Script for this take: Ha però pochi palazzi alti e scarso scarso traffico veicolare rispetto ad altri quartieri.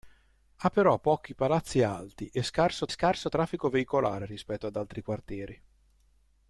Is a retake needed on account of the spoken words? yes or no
no